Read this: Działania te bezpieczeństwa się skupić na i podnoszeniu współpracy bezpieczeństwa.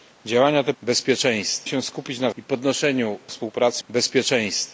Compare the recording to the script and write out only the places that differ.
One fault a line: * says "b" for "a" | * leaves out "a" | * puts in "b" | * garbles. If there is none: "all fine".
all fine